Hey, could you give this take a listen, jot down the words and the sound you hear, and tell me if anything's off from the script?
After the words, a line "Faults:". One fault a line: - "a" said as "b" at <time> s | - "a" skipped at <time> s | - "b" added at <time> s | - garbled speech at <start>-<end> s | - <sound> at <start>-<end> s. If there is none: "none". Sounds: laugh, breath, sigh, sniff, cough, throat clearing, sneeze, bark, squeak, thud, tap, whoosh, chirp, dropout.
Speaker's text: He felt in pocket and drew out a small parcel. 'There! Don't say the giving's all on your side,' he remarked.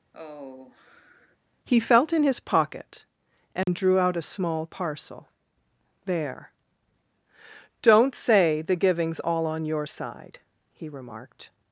He felt in his pocket and drew out a small parcel. 'There! Don't say the giving's all on your side,' he remarked.
Faults:
- sigh at 0.1-1.4 s
- "his" added at 2.2 s
- dropout at 3.6-3.7 s